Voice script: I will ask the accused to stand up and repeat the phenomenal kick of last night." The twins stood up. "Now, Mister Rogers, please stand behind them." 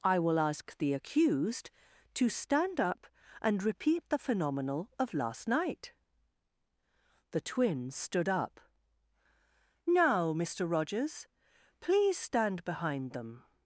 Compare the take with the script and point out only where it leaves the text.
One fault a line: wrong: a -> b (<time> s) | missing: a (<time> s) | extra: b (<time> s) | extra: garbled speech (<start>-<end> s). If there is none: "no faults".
missing: kick (4.9 s)